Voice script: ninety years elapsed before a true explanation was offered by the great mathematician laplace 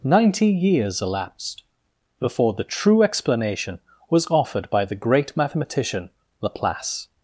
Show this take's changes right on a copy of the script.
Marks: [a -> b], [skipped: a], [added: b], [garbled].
ninety years elapsed before [a -> the] true explanation was offered by the great mathematician laplace